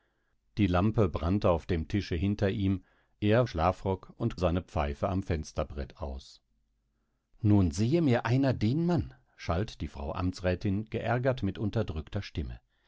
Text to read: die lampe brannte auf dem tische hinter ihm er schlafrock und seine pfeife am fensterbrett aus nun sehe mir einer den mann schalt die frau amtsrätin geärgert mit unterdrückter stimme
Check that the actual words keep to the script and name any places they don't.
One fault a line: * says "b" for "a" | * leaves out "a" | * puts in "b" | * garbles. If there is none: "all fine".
all fine